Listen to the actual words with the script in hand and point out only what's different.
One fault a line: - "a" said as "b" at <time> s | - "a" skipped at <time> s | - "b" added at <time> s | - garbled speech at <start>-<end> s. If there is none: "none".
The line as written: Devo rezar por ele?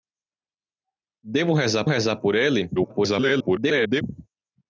- "rezar" added at 1.9 s
- garbled speech at 2.7-4.0 s